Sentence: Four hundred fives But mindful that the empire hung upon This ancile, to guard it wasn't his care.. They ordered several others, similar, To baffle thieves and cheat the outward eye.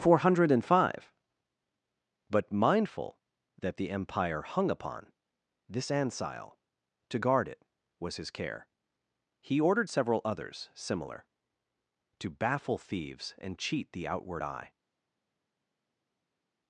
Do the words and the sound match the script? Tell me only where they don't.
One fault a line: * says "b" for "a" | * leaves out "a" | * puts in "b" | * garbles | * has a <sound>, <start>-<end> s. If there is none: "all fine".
* says "five" for "fives"
* says "was" for "wasn't"
* says "He" for "They"